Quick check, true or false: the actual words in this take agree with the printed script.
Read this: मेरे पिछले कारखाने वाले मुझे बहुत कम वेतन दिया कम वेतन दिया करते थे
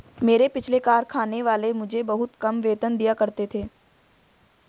false